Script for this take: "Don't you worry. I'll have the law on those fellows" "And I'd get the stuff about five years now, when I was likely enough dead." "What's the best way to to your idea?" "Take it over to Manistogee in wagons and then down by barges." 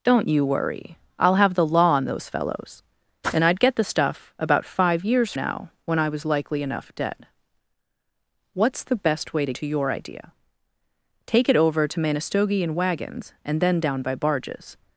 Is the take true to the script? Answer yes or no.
yes